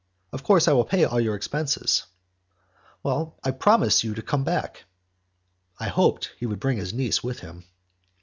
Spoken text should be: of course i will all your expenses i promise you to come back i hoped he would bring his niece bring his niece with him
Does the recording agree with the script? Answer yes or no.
no